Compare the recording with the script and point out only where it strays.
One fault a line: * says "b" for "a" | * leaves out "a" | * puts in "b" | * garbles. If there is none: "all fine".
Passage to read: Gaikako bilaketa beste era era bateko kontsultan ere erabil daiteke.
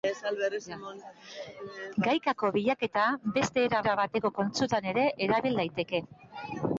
all fine